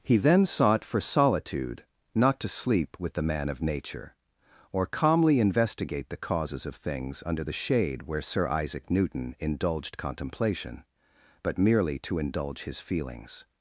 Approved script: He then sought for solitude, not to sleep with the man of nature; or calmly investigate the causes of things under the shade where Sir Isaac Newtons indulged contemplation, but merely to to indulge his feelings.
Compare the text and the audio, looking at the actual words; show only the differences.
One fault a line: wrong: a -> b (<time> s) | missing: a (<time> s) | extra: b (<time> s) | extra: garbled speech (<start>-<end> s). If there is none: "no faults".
wrong: Newtons -> Newton (8.9 s)
missing: to (12.2 s)